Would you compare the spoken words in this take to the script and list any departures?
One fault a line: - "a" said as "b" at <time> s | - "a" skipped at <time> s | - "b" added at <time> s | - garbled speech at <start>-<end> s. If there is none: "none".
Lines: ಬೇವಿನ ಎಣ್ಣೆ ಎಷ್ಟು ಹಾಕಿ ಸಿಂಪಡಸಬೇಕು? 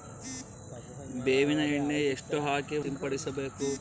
none